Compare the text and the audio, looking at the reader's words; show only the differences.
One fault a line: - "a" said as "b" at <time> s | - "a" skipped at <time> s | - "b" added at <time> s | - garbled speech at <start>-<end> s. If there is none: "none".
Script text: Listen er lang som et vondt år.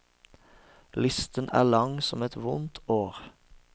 none